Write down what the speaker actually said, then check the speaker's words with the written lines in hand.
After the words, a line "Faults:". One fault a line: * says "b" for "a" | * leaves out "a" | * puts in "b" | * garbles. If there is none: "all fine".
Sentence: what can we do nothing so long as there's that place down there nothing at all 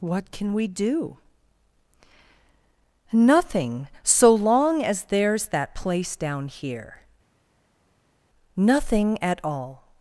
what can we do nothing so long as there's that place down here nothing at all
Faults:
* says "here" for "there"